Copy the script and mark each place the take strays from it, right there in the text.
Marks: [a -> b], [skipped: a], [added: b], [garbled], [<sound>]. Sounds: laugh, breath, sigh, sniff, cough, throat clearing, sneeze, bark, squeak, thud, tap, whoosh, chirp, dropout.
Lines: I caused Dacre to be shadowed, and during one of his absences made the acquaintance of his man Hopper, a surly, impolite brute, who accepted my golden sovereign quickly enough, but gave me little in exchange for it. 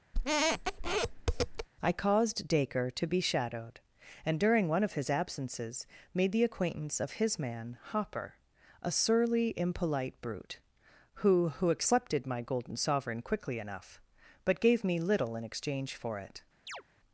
[squeak] I caused Dacre to be shadowed, and during one of his absences made the acquaintance of his man Hopper, a surly, impolite brute, who [added: who] accepted my golden sovereign quickly enough, but gave me little in exchange for it. [chirp]